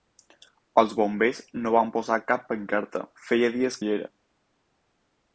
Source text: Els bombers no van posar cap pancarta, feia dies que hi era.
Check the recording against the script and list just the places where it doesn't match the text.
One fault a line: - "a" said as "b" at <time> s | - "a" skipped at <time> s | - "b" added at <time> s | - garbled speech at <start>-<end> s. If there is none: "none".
- "que" skipped at 3.8 s